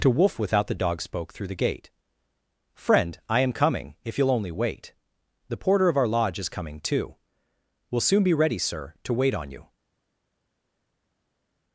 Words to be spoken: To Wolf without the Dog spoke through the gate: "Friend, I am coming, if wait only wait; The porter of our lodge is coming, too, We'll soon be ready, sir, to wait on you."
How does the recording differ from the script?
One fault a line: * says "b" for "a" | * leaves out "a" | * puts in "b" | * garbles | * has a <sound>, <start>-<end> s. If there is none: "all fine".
* says "you'll" for "wait"